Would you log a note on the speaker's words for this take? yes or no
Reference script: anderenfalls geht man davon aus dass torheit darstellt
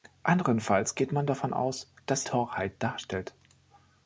no